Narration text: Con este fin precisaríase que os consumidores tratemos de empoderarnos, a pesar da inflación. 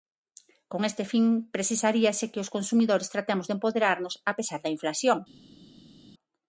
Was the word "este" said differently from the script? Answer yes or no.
no